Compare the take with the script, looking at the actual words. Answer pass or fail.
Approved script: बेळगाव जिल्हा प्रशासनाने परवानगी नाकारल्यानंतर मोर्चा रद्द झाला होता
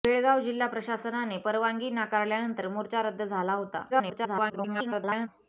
fail